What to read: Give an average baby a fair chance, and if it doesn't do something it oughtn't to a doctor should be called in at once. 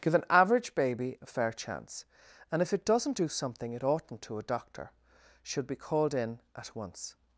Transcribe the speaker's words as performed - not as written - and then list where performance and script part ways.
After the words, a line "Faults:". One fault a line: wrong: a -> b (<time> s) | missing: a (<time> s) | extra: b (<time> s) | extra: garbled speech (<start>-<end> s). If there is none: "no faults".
Give an average baby a fair chance, and if it doesn't do something it oughtn't to a doctor should be called in at once.
Faults:
no faults